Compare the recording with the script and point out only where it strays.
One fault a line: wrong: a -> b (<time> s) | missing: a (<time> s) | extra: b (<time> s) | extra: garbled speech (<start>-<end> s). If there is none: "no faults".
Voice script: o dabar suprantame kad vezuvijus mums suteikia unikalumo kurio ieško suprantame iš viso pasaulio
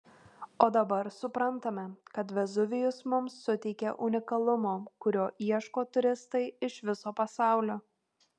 wrong: suprantame -> turistai (6.0 s)